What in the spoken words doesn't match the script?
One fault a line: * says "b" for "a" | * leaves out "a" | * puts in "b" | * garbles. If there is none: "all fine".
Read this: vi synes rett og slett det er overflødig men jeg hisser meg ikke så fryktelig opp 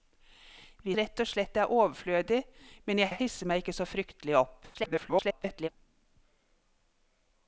* leaves out "synes"
* puts in "jeg"
* garbles